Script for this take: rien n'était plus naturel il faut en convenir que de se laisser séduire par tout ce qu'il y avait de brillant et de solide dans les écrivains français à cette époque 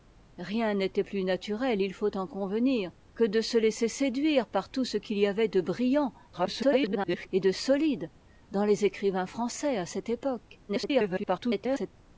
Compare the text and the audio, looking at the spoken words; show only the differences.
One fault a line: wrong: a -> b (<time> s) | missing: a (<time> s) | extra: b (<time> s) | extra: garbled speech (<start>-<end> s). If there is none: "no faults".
extra: garbled speech (6.3-7.3 s)
extra: garbled speech (10.7-11.9 s)